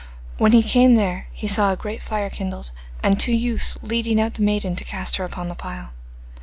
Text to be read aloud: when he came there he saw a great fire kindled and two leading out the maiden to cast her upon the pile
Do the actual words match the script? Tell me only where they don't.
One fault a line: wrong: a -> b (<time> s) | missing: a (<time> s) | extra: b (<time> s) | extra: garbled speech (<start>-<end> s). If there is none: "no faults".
extra: youths (3.3 s)